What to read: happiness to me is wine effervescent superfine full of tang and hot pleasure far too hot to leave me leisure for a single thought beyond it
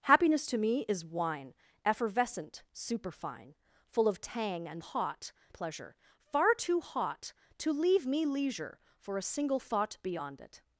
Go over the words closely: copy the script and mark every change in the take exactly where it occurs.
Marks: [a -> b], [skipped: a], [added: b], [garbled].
happiness to me is wine effervescent superfine full of tang and hot pleasure far too hot to leave me leisure for a single thought beyond it